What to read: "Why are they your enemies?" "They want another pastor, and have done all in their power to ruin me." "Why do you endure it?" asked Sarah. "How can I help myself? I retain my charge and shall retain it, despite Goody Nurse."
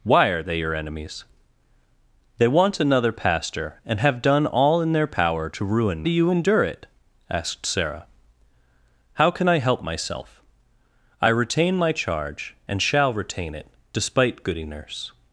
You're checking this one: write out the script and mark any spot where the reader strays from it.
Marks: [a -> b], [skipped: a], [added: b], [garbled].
"Why are they your enemies?" "They want another pastor, and have done all in their power to ruin [skipped: me." "Why] do you endure it?" asked Sarah. "How can I help myself? I retain my charge and shall retain it, despite Goody Nurse."